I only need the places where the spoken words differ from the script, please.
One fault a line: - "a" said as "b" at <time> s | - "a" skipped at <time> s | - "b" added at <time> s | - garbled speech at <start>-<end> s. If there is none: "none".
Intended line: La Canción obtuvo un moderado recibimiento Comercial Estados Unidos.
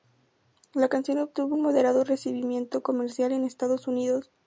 - "en" added at 3.3 s